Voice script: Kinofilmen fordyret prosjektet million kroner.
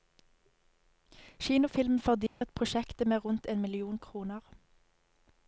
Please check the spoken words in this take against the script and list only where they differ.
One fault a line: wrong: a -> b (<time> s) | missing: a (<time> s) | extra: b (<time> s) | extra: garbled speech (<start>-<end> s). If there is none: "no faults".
extra: med rundt en (3.1 s)